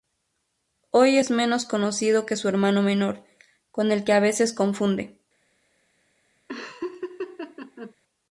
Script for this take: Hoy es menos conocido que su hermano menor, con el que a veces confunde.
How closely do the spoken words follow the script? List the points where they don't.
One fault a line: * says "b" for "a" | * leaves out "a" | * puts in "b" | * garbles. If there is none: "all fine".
all fine